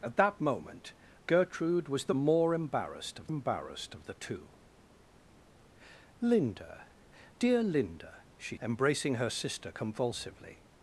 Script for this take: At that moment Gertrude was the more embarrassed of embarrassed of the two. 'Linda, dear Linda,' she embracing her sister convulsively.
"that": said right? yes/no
yes